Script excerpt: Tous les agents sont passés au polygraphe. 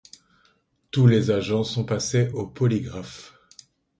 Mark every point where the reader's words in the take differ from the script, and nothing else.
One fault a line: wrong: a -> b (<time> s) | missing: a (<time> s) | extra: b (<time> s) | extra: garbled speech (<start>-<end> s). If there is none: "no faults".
no faults